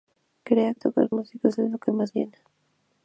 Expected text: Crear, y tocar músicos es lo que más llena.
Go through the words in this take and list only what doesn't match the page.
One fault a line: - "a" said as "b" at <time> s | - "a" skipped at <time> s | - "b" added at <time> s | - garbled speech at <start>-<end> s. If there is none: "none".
none